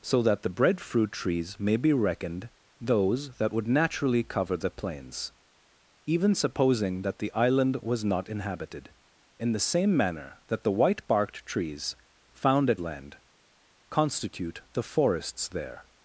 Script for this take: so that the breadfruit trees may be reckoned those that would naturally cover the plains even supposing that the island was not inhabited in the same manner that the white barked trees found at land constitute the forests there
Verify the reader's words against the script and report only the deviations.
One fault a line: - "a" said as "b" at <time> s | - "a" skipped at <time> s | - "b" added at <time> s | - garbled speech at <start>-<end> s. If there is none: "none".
none